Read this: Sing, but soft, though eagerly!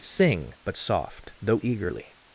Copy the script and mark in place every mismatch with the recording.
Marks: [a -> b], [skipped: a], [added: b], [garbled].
Sing, but soft, though eagerly!